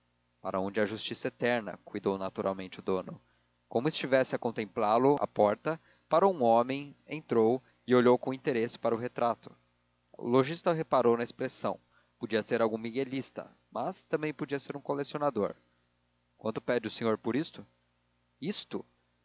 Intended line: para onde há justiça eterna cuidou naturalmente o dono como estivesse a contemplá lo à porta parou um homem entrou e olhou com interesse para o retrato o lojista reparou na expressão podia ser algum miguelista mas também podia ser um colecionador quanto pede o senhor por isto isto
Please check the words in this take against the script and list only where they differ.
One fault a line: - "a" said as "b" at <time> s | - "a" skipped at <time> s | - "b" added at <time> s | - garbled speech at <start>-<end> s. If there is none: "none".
none